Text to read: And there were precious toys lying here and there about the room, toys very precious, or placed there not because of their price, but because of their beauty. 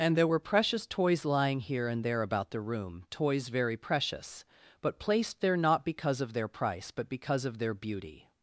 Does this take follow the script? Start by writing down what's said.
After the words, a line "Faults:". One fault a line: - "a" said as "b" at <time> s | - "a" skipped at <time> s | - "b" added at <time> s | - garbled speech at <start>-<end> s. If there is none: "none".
And there were precious toys lying here and there about the room, toys very precious, but placed there not because of their price, but because of their beauty.
Faults:
- "or" said as "but" at 4.8 s